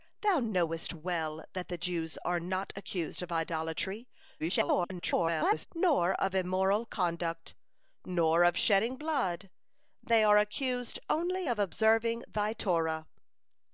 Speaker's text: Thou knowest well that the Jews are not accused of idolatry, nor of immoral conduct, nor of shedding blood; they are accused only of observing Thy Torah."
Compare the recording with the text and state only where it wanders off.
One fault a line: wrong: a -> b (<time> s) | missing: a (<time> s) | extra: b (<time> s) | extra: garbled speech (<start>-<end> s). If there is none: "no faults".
extra: garbled speech (4.4-5.7 s)